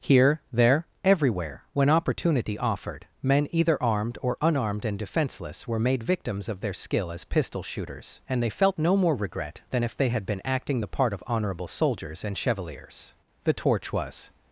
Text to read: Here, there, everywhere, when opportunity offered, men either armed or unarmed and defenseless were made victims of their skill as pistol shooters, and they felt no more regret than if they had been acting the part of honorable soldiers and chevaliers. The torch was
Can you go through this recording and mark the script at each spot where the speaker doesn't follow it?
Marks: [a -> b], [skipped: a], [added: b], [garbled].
Here, there, everywhere, when opportunity offered, men either armed or unarmed and defenseless were made victims of their skill as pistol shooters, and they felt no more regret than if they had been acting the part of honorable soldiers and chevaliers. The torch was